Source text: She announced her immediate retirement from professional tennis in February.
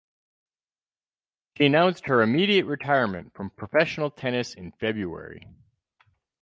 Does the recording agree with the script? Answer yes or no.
yes